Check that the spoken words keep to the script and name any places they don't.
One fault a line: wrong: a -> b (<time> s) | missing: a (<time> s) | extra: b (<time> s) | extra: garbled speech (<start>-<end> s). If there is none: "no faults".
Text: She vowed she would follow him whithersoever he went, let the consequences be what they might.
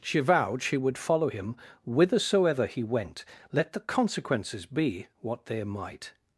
no faults